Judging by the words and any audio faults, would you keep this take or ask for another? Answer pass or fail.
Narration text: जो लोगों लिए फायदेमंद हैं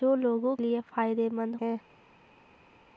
pass